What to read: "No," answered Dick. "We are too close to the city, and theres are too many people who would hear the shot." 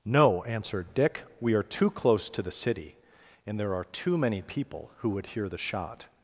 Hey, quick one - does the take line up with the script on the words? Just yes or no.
no